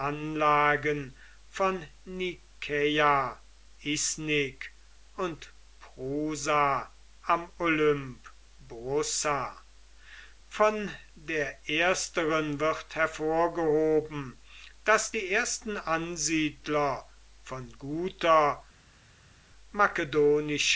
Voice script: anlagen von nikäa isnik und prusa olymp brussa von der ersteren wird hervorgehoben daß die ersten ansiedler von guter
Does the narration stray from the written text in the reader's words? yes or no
yes